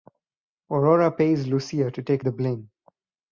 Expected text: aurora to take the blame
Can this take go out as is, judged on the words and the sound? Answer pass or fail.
fail